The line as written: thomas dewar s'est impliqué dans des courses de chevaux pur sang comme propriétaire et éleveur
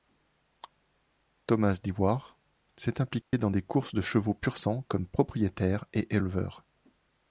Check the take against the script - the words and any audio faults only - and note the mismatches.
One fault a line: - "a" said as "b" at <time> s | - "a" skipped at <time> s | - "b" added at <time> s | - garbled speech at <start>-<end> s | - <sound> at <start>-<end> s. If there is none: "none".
- dropout at 3.2-3.3 s